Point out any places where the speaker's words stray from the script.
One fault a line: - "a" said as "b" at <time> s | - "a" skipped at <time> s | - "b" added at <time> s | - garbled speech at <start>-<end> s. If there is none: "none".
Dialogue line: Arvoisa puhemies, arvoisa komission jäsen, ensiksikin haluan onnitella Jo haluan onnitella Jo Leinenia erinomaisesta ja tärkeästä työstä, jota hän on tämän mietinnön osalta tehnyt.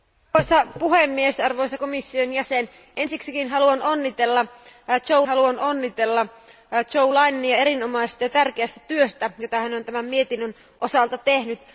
none